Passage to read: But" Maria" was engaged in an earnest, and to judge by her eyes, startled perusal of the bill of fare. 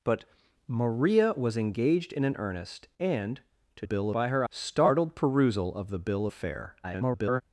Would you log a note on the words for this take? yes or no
yes